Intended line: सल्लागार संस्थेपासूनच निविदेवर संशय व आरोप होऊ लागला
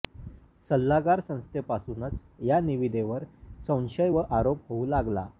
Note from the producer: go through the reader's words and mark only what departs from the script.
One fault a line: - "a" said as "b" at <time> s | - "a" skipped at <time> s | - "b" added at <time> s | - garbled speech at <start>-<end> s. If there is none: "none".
- "या" added at 2.4 s